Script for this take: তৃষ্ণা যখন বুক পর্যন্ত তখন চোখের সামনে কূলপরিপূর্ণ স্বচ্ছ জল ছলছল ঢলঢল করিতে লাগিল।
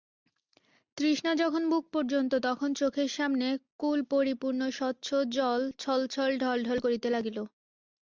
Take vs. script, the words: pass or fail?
pass